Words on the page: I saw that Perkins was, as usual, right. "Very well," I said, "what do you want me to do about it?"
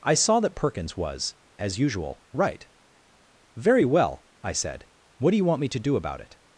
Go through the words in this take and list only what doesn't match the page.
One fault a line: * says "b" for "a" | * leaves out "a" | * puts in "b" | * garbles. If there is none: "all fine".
all fine